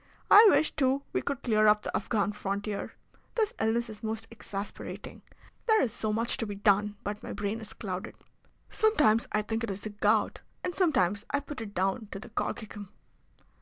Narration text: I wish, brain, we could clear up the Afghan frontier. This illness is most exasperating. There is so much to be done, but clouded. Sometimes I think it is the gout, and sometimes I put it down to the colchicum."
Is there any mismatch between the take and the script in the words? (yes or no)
yes